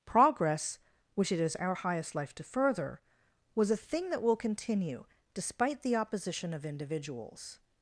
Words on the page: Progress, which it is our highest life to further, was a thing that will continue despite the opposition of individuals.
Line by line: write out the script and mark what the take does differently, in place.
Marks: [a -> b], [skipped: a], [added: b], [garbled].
Progress, which it is our highest life to further, was a thing that will continue despite the opposition of individuals.